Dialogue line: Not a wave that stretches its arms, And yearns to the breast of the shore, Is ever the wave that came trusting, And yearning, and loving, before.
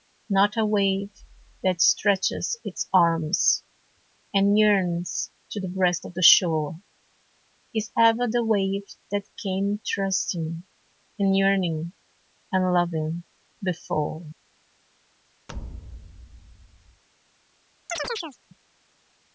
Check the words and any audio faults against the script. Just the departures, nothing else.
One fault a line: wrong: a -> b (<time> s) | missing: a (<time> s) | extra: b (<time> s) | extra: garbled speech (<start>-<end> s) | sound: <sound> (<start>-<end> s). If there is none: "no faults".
sound: thud (15.5-17.0 s)
sound: chirp (17.9-18.4 s)